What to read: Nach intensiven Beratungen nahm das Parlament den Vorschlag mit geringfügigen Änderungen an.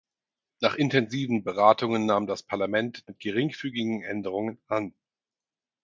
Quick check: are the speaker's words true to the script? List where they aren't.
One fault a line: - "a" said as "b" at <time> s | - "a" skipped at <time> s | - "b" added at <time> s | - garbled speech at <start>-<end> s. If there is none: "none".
- "den Vorschlag" skipped at 3.1 s